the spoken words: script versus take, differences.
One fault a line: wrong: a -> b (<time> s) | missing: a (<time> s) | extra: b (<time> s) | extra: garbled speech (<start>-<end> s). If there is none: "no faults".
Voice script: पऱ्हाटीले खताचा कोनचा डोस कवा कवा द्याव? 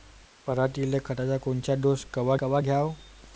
no faults